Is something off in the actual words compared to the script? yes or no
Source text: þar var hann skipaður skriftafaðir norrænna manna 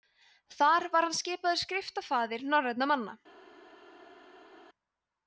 no